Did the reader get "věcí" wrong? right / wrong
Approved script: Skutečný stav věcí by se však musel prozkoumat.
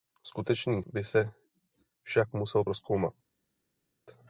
wrong